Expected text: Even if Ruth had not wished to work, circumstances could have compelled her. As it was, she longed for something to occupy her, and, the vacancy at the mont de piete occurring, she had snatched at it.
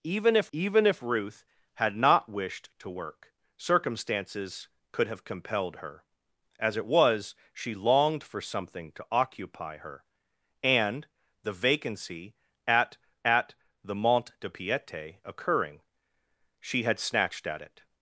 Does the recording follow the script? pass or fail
fail